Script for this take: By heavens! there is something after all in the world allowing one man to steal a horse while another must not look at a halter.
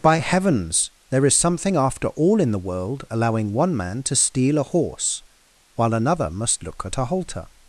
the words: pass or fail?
fail